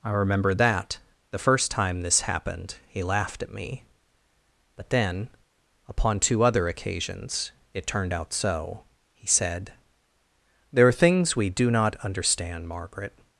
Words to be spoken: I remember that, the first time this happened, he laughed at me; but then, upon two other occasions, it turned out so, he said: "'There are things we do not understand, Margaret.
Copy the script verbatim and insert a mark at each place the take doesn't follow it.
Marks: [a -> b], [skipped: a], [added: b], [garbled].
I remember that, the first time this happened, he laughed at me; but then, upon two other occasions, it turned out so, he said: "'There are things we do not understand, Margaret.